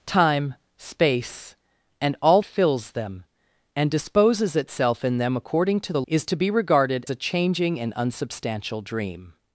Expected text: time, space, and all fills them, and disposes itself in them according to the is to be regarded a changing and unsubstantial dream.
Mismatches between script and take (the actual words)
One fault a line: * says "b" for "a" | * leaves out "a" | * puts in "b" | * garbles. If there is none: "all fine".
all fine